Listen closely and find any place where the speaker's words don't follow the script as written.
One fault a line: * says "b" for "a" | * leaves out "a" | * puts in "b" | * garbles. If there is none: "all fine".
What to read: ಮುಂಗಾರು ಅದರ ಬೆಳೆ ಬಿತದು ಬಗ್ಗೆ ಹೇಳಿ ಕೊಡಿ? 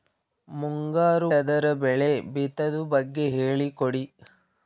all fine